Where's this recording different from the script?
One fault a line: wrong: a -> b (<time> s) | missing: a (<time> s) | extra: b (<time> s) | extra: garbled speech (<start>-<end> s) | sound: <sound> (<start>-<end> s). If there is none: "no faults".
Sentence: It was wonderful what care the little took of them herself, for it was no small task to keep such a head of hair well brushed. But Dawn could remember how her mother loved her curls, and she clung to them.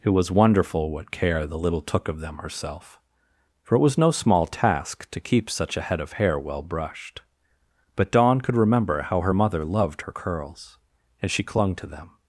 no faults